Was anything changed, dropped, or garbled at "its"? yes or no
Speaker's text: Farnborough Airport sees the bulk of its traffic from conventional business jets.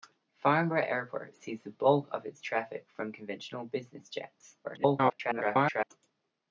no